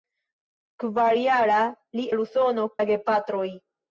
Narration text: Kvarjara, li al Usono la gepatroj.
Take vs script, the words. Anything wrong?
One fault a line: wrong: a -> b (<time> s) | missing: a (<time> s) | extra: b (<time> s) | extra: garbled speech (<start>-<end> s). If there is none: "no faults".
no faults